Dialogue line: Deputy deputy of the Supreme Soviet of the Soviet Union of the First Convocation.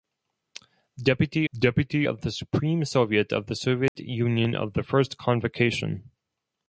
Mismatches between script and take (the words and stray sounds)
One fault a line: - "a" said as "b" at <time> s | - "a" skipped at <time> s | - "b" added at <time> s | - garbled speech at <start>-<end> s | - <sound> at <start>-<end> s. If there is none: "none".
- dropout at 3.9-4.0 s